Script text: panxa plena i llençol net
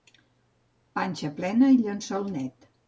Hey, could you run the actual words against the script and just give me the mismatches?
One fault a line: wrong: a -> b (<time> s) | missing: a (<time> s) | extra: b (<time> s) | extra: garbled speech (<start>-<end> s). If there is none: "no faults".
no faults